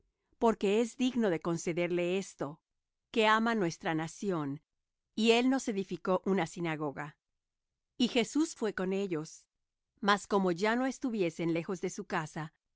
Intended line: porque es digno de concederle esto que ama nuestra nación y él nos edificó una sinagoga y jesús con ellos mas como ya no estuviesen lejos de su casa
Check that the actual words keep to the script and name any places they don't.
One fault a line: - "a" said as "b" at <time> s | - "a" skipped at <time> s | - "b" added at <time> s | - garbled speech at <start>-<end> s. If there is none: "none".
- "fué" added at 8.6 s